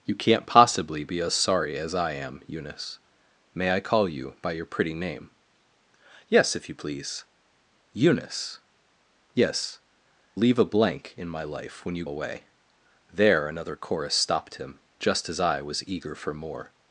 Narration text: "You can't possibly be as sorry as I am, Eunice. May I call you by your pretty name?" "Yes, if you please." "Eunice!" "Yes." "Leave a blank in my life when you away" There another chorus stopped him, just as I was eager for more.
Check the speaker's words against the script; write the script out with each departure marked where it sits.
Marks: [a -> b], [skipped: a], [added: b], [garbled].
"You can't possibly be as sorry as I am, Eunice. May I call you by your pretty name?" "Yes, if you please." "Eunice!" "Yes." "Leave a blank in my life when you away" There another chorus stopped him, just as I was eager for more.